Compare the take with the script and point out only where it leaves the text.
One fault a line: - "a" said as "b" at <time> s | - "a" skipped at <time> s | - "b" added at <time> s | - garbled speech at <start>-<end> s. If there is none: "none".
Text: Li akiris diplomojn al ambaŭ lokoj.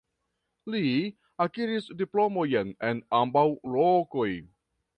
- "al" said as "en" at 2.9 s